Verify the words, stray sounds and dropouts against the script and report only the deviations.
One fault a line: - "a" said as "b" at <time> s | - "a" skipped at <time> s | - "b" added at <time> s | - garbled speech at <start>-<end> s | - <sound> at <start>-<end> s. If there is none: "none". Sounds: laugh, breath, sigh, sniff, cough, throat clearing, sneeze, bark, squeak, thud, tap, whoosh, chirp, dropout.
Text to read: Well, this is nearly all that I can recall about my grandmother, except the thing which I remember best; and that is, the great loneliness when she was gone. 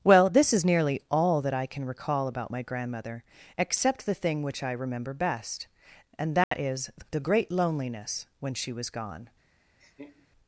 - dropout at 6.4-6.5 s
- laugh at 9.8-10.3 s